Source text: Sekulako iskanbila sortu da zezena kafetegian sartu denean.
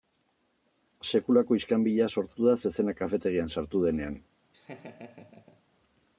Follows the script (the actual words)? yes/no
yes